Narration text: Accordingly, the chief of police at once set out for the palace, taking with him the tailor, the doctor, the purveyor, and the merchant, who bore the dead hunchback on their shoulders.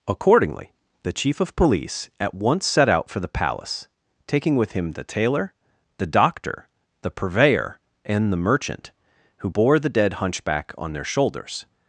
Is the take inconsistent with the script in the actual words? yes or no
no